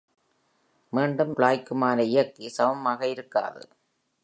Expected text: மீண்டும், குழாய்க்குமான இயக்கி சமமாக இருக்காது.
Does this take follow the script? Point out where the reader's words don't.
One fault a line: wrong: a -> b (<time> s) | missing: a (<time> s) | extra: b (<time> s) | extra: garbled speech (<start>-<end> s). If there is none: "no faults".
no faults